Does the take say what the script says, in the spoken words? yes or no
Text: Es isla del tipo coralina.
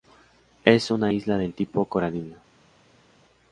no